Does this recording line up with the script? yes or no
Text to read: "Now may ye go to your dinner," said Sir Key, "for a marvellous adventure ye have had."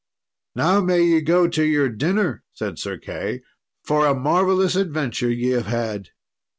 yes